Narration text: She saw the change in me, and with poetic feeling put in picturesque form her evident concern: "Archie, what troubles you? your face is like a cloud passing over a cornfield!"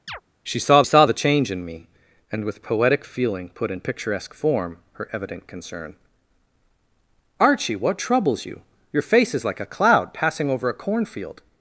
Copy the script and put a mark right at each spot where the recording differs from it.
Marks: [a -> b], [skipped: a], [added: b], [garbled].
She saw [added: saw] the change in me, and with poetic feeling put in picturesque form her evident concern: "Archie, what troubles you? your face is like a cloud passing over a cornfield!"